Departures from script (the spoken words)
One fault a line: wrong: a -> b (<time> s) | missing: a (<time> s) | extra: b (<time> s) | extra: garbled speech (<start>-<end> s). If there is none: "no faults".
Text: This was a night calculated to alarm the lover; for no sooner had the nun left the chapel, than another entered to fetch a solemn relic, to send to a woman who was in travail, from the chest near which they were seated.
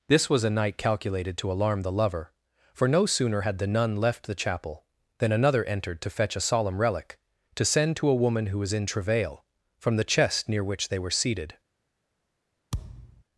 no faults